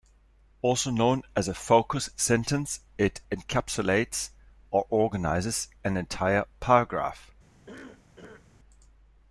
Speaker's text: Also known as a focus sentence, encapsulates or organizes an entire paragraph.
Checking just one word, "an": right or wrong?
right